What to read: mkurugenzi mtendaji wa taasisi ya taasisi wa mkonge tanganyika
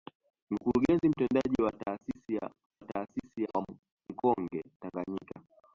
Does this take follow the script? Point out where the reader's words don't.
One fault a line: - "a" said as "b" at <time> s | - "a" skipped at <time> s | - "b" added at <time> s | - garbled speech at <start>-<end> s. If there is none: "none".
none